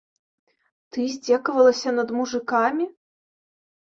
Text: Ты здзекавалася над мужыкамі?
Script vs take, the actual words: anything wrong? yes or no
no